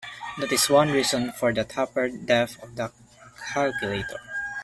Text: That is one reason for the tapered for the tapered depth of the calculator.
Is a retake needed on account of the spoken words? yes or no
yes